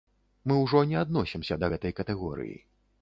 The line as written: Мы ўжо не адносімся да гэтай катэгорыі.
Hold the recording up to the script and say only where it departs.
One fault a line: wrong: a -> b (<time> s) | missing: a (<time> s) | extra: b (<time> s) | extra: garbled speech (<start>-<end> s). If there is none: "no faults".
no faults